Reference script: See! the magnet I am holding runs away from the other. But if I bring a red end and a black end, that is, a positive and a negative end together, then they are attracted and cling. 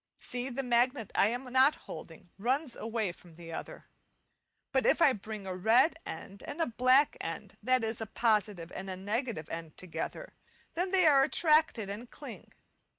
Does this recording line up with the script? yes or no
no